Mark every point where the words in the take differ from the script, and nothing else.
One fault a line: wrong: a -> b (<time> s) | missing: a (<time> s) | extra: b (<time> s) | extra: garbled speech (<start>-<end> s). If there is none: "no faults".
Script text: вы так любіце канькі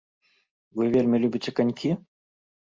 wrong: так -> вельмі (0.9 s)